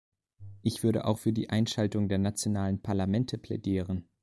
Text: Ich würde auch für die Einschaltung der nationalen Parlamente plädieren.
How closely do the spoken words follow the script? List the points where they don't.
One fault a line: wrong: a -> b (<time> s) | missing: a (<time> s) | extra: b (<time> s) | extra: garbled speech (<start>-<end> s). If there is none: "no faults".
no faults